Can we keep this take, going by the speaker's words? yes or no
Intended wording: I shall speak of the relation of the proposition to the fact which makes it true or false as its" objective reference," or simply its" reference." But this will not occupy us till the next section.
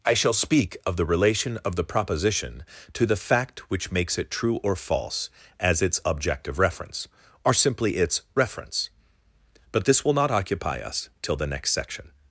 yes